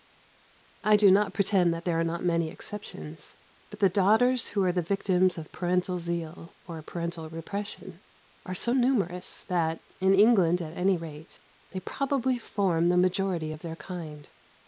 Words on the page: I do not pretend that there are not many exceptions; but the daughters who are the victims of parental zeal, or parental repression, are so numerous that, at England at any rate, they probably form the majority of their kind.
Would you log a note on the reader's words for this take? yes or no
yes